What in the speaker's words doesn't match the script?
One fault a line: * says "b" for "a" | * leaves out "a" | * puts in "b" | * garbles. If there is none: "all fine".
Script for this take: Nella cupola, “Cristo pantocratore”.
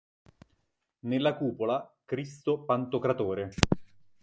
all fine